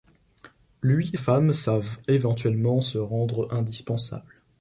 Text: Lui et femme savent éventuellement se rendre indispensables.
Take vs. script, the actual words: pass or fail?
pass